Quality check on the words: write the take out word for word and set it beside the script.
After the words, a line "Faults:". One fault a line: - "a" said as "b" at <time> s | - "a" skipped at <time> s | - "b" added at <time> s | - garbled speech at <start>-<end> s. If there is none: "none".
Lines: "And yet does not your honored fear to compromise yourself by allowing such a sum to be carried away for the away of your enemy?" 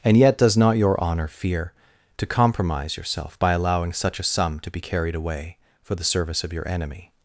"And yet does not your honor fear to compromise yourself by allowing such a sum to be carried away for the service of your enemy?"
Faults:
- "honored" said as "honor" at 1.0 s
- "away" said as "service" at 6.0 s